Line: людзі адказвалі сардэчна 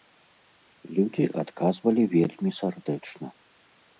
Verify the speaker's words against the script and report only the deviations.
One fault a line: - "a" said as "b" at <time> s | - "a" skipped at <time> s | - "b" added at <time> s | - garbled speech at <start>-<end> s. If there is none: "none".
- "вельмі" added at 2.1 s